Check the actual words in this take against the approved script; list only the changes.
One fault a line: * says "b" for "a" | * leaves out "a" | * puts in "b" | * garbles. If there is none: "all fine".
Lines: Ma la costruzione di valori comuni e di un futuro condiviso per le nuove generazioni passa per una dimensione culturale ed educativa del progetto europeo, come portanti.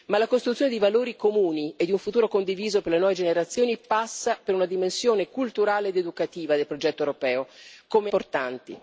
all fine